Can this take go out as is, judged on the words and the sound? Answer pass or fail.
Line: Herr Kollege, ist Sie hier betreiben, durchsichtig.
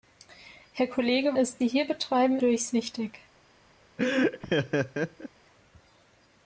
fail